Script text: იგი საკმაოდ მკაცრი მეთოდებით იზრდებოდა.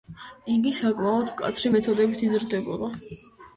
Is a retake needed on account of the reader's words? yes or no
no